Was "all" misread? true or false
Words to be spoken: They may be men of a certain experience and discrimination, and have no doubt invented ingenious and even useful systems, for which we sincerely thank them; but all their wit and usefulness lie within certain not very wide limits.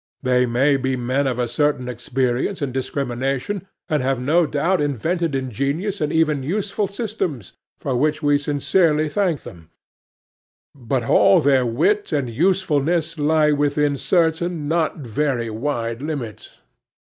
false